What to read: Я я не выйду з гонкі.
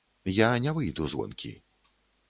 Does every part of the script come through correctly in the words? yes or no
no